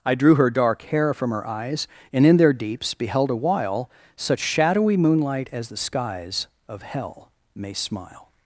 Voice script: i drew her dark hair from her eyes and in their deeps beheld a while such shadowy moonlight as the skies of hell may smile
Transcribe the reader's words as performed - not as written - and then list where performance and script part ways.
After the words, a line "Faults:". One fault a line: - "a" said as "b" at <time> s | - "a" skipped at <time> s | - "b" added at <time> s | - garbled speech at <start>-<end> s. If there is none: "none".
i drew her dark hair from her eyes and in their deeps beheld a while such shadowy moonlight as the skies of hell may smile
Faults:
none